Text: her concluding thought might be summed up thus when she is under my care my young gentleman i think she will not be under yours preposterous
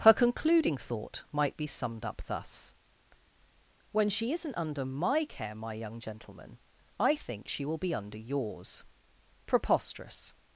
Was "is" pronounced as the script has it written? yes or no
no